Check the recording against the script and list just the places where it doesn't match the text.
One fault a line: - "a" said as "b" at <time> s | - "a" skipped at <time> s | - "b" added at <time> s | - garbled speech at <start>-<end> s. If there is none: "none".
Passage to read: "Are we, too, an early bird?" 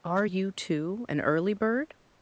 - "we" said as "you" at 0.2 s